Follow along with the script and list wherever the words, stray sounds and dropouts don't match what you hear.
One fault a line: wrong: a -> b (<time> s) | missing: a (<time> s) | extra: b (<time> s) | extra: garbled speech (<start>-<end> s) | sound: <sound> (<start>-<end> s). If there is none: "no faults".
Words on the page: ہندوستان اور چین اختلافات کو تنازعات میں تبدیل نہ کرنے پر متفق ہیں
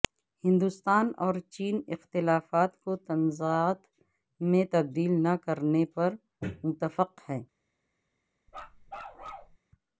sound: bark (8.5-9.6 s)